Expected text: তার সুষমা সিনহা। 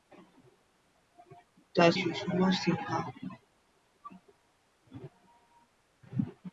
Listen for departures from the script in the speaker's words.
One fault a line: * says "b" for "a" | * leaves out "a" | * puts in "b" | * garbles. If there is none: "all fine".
all fine